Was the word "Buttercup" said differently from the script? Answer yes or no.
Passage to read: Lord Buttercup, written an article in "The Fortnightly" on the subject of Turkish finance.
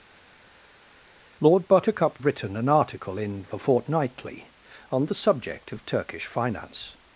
no